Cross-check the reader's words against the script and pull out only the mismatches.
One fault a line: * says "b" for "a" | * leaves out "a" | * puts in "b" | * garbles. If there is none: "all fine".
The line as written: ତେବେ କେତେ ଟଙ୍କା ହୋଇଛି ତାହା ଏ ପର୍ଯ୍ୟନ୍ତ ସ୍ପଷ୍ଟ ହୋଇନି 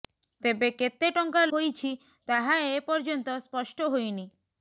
all fine